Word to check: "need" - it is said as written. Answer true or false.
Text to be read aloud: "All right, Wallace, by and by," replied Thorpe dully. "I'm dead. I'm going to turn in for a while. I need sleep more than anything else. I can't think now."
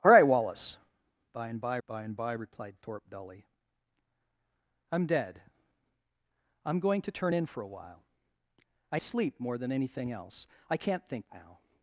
false